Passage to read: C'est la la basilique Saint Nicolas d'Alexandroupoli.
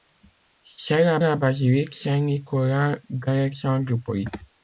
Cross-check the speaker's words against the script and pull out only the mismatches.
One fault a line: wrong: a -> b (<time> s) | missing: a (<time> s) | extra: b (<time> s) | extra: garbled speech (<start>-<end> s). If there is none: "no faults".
no faults